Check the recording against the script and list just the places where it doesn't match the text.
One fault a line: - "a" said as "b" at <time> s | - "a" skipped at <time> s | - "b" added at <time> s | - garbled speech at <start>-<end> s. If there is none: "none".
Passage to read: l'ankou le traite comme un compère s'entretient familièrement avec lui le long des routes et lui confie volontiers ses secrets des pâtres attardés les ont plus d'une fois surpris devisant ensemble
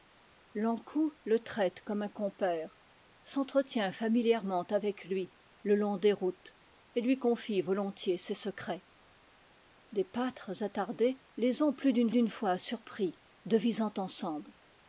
- "d'une" added at 12.1 s